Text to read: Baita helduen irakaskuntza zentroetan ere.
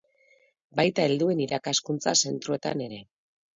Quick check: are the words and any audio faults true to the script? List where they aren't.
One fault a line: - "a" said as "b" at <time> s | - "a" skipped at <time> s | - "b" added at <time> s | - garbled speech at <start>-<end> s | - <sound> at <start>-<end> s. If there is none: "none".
none